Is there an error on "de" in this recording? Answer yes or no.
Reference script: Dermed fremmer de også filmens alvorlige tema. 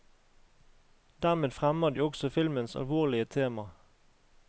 no